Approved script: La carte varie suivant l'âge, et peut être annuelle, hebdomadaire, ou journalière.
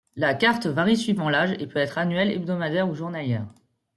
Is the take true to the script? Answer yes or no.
yes